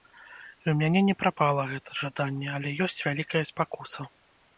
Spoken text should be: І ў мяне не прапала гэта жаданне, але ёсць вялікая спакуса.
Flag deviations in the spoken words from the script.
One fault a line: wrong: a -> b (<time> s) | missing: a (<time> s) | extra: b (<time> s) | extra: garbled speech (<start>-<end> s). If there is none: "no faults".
no faults